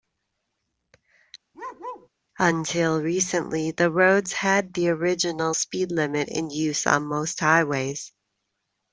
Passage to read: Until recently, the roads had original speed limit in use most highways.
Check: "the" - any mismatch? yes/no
no